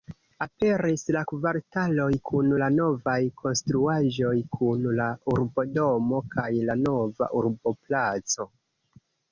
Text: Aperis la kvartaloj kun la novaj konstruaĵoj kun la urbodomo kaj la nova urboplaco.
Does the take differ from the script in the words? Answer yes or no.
no